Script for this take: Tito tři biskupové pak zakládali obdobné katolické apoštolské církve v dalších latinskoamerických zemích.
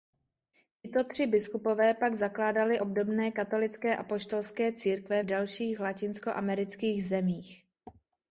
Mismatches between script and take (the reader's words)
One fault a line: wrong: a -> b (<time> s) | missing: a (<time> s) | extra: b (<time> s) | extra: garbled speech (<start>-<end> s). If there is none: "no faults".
no faults